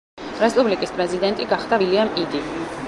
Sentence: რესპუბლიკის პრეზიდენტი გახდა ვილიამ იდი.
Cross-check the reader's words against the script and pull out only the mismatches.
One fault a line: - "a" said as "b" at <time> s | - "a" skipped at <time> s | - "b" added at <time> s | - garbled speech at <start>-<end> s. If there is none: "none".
none